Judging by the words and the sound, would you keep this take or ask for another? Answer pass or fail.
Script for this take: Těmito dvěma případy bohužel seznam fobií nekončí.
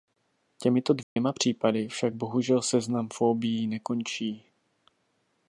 fail